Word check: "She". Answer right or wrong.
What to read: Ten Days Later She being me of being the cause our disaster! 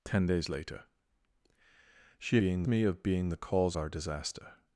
right